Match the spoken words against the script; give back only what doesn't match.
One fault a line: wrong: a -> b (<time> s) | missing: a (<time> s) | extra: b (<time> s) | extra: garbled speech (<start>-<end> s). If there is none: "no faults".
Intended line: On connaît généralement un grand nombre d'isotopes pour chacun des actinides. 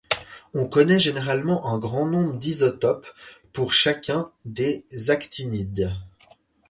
no faults